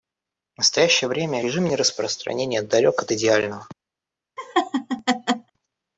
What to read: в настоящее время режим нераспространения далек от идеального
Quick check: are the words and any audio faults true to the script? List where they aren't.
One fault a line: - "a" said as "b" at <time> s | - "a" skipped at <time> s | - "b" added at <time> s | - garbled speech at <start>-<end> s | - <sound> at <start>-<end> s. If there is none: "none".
- laugh at 4.4-5.5 s